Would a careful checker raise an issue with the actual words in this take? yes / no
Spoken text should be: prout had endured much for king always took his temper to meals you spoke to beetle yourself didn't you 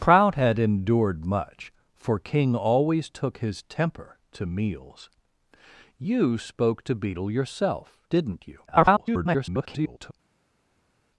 yes